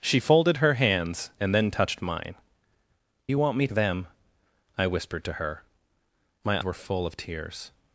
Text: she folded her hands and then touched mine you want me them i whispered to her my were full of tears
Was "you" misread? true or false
false